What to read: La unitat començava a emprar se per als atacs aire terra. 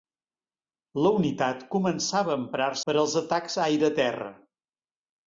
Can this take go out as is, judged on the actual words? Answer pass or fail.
fail